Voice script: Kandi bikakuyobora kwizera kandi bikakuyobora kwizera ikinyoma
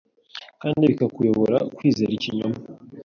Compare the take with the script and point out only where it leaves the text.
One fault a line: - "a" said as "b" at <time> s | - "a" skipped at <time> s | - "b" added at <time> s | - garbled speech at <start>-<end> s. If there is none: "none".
- "kandi bikakuyobora kwizera" skipped at 2.1 s